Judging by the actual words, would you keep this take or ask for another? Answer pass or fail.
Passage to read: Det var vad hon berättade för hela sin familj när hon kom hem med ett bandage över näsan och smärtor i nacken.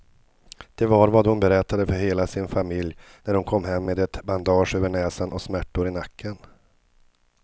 pass